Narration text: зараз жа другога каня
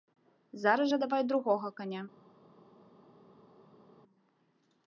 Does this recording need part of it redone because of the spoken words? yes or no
yes